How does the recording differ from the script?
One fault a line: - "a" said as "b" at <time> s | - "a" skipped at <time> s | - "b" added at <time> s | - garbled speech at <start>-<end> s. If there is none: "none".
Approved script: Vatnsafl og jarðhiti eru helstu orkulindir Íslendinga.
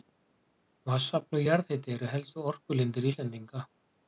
none